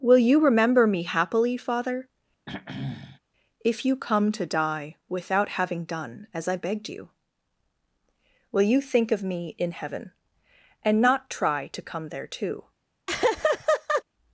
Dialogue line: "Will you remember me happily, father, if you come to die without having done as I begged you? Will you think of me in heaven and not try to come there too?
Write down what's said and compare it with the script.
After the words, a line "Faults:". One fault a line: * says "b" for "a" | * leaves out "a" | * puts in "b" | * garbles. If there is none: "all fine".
"Will you remember me happily, father, if you come to die without having done as I begged you? Will you think of me in heaven and not try to come there too?
Faults:
all fine